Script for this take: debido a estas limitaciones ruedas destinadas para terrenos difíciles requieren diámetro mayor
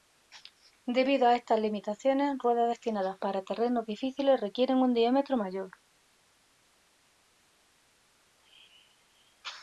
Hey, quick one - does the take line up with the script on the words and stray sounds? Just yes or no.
no